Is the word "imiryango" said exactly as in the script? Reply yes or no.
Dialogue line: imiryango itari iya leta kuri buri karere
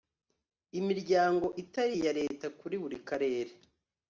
yes